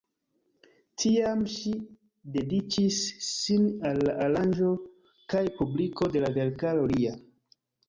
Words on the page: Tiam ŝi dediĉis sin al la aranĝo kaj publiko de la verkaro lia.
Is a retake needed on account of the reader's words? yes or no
no